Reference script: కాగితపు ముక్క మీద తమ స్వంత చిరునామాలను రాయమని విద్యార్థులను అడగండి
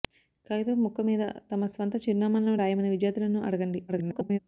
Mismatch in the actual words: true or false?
true